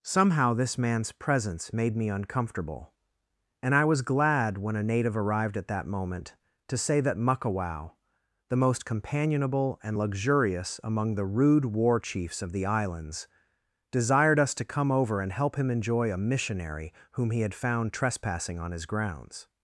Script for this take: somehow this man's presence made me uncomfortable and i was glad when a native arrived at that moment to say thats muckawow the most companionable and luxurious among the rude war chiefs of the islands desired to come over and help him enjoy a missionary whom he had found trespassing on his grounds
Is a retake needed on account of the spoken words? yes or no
yes